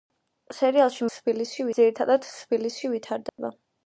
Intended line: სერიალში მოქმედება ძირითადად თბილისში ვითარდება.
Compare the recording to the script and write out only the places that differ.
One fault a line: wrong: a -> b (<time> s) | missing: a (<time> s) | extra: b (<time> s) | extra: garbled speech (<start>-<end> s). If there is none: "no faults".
wrong: მოქმედება -> თბილისში (1.1 s)